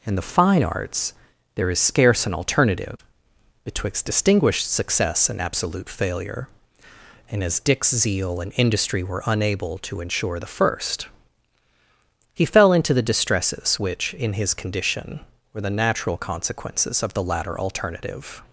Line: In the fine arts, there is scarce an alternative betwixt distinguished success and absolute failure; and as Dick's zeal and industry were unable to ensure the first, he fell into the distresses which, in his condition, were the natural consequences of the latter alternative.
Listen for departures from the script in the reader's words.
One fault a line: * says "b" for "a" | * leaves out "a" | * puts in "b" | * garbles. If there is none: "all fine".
all fine